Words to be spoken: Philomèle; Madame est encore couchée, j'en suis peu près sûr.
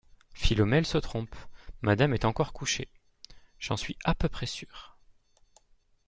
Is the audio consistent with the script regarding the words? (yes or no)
no